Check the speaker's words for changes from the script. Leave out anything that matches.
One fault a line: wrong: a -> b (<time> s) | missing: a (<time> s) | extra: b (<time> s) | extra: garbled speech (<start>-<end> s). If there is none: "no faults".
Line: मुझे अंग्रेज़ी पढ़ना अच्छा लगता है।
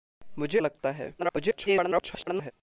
missing: अंग्रेज़ी पढ़ना अच्छा (0.6 s)
extra: garbled speech (1.2-2.5 s)